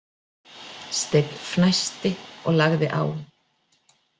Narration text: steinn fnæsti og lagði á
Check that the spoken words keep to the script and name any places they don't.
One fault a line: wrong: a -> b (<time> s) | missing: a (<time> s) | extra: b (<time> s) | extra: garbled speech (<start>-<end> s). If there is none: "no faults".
no faults